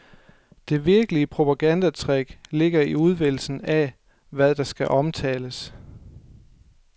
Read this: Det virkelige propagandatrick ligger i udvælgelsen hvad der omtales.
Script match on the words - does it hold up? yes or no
no